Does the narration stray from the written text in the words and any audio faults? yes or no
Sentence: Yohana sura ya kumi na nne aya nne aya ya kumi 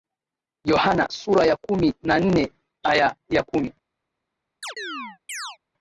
yes